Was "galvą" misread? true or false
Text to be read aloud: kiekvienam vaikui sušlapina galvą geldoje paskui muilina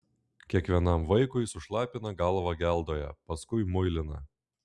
false